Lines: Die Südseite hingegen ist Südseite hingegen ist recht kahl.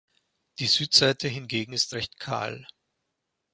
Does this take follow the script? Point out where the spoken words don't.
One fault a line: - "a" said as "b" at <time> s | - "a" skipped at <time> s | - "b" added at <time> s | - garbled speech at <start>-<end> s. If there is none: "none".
- "Südseite hingegen ist" skipped at 2.0 s